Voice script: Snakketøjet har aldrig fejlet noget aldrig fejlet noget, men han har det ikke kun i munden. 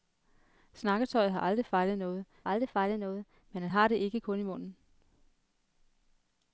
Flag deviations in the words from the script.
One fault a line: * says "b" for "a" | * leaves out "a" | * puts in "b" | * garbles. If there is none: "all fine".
all fine